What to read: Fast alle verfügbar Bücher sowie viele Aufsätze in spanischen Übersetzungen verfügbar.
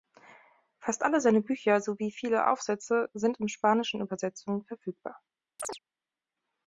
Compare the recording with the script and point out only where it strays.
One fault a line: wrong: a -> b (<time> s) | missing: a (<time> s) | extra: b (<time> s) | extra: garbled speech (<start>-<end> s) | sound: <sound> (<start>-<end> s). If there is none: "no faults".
wrong: verfügbar -> seine (1.2 s)
extra: sind (3.1 s)
sound: chirp (5.6-5.8 s)